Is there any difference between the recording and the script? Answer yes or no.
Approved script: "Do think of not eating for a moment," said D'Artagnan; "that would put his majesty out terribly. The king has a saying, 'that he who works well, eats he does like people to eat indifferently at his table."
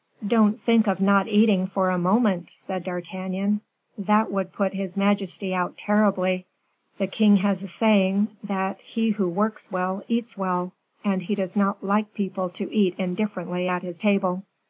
yes